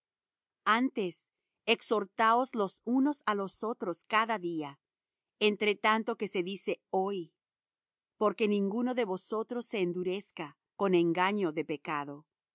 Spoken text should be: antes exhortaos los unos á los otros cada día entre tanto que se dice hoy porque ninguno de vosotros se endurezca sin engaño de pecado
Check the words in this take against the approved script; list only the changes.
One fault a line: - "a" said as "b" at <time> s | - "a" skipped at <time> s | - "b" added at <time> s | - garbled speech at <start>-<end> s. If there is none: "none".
- "sin" said as "con" at 10.8 s